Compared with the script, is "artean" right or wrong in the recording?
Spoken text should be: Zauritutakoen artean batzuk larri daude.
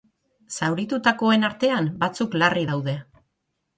right